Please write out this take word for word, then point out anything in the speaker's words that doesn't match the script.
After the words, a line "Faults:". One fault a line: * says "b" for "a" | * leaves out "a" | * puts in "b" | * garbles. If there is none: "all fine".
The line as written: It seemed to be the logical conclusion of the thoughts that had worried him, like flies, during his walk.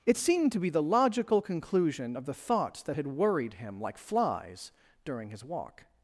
It seemed to be the logical conclusion of the thoughts that had worried him, like flies, during his walk.
Faults:
all fine